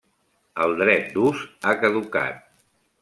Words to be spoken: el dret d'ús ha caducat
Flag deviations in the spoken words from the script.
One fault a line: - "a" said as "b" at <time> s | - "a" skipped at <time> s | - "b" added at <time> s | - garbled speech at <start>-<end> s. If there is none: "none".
none